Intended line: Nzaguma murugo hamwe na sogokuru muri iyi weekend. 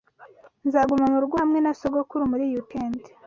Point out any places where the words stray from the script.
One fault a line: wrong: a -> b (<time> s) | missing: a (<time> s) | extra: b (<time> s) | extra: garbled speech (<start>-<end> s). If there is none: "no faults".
no faults